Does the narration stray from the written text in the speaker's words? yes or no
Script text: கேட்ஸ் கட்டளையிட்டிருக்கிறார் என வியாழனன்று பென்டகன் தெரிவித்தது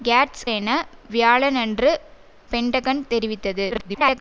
yes